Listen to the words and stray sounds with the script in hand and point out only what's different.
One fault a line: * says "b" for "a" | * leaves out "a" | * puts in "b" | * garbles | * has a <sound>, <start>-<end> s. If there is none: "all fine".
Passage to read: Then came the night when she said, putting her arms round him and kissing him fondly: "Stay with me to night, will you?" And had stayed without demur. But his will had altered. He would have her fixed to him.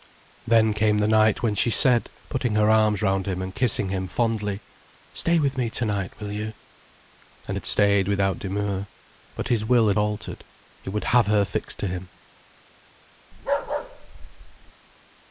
* has a bark, 13.3-14.7 s